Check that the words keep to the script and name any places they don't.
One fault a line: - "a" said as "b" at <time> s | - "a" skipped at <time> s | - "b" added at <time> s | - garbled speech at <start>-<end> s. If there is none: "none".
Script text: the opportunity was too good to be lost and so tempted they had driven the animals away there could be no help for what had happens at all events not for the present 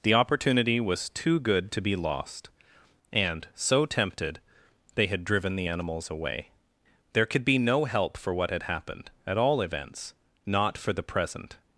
- "happens" said as "happened" at 8.6 s